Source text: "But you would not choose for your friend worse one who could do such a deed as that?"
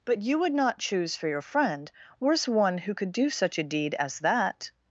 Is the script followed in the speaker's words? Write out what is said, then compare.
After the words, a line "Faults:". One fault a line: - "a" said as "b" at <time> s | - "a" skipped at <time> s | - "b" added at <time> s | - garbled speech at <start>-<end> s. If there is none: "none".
"But you would not choose for your friend worse one who could do such a deed as that?"
Faults:
none